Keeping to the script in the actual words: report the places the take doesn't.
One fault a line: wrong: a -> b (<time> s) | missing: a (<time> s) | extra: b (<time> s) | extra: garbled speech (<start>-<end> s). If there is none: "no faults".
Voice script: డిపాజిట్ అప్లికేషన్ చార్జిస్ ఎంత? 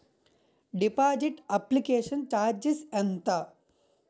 no faults